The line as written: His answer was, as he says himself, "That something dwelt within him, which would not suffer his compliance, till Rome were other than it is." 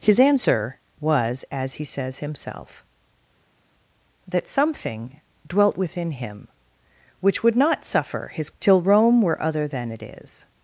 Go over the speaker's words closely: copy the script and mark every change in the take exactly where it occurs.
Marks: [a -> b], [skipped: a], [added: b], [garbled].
His answer was, as he says himself, "That something dwelt within him, which would not suffer his [skipped: compliance,] till Rome were other than it is."